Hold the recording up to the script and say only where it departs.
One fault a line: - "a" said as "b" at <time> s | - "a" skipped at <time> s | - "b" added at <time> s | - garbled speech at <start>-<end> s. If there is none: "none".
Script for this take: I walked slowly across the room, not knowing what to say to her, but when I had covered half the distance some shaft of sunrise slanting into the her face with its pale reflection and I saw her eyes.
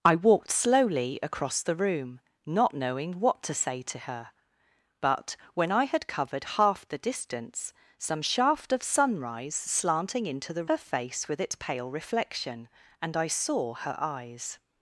none